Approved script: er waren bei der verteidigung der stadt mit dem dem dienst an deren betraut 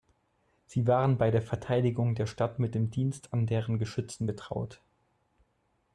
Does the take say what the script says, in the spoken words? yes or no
no